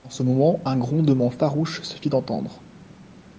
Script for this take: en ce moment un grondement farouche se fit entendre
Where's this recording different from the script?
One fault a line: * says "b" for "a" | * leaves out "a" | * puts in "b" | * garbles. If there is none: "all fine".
all fine